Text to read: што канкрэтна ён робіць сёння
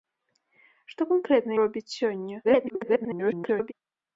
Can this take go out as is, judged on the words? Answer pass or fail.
fail